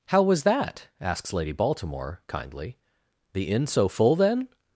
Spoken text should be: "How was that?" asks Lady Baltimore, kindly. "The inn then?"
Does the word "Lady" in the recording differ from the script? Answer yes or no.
no